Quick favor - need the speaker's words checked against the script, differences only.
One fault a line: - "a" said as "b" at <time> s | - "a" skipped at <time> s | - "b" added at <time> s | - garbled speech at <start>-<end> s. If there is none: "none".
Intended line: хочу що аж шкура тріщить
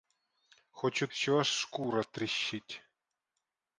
none